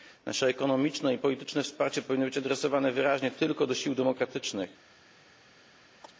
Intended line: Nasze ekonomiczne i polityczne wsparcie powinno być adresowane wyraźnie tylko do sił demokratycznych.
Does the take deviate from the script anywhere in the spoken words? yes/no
no